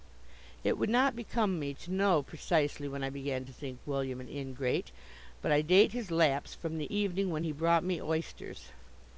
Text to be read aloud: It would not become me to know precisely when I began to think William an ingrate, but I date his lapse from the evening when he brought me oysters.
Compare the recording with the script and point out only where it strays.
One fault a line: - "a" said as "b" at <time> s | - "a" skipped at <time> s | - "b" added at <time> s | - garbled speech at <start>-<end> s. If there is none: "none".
none